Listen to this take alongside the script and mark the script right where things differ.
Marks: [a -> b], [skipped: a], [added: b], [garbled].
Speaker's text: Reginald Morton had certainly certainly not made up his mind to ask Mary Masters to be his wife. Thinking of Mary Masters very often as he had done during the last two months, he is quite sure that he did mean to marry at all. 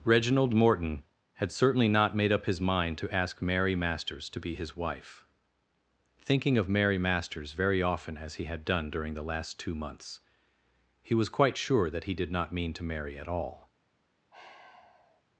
Reginald Morton had certainly [skipped: certainly] not made up his mind to ask Mary Masters to be his wife. Thinking of Mary Masters very often as he had done during the last two months, he [is -> was] quite sure that he did [added: not] mean to marry at all.